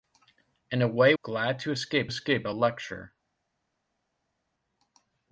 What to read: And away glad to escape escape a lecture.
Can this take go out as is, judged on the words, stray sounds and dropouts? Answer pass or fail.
pass